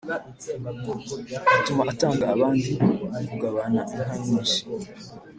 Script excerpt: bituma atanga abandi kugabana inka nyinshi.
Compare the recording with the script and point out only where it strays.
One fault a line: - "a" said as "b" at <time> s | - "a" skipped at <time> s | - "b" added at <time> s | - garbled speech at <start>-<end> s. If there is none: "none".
none